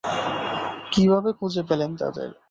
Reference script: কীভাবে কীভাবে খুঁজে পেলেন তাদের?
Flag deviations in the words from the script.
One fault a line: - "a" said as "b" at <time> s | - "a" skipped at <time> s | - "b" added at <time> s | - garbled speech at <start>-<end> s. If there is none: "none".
- "কীভাবে" skipped at 1.3 s